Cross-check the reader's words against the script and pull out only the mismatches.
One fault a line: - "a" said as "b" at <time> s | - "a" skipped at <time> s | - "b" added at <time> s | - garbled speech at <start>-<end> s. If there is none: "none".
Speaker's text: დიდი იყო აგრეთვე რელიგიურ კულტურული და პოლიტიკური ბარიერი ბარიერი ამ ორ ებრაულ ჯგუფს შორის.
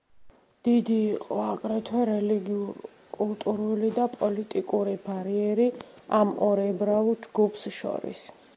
- "ბარიერი" skipped at 5.7 s